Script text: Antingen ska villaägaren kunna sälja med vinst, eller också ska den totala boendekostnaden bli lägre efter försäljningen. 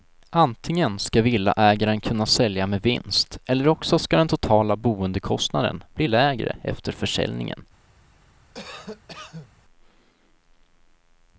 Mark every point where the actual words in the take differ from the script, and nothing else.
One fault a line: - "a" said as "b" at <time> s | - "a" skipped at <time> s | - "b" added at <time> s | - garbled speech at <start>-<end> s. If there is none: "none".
none